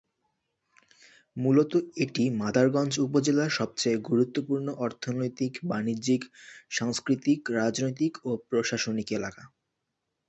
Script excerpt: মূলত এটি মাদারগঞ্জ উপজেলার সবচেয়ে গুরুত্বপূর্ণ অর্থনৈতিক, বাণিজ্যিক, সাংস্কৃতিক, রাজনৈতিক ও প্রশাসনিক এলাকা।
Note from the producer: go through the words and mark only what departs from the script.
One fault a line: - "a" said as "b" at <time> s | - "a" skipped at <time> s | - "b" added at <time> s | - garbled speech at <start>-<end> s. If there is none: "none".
none